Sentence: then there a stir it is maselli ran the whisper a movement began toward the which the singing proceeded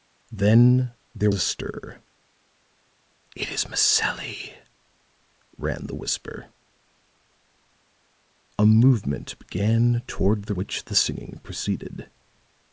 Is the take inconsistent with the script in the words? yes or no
no